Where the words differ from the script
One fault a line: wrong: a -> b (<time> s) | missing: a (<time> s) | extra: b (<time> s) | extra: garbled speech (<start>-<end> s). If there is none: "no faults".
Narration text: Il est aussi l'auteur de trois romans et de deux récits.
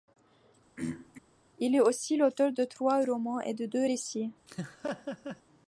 no faults